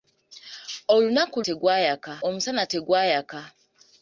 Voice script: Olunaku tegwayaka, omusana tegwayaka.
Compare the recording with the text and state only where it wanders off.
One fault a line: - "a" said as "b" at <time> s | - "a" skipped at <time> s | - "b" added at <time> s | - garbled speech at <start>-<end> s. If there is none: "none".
none